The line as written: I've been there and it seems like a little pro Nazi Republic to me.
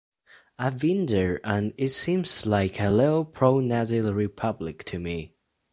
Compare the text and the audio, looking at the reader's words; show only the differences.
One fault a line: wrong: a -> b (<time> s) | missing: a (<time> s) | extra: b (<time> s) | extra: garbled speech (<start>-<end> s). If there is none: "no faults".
no faults